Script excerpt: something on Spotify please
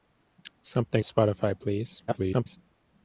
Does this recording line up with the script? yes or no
no